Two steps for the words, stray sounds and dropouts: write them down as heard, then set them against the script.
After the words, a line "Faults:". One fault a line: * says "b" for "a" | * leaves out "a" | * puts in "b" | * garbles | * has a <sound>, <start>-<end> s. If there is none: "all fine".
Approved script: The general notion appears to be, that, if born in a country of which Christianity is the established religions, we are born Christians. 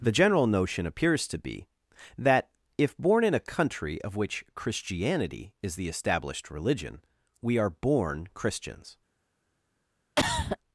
The general notion appears to be, that, if born in a country of which Christianity is the established religion, we are born Christians.
Faults:
* says "religion" for "religions"
* has a cough, 10.2-10.6 s